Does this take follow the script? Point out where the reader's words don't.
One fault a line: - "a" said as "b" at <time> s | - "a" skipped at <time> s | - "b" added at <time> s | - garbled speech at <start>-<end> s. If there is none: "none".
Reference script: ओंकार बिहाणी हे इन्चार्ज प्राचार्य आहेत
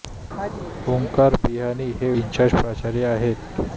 none